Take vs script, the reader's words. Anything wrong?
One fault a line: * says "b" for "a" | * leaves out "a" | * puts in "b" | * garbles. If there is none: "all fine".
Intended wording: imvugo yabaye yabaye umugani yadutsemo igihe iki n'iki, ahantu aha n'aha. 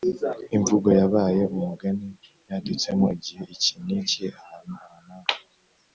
* leaves out "yabaye"